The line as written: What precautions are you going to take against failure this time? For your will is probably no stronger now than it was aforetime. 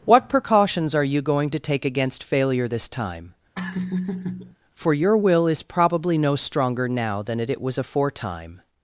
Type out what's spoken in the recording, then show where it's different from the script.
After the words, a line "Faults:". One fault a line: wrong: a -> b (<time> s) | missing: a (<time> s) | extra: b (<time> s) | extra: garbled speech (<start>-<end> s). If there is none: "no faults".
What precautions are you going to take against failure this time? For your will is probably no stronger now than it it was aforetime.
Faults:
extra: it (7.5 s)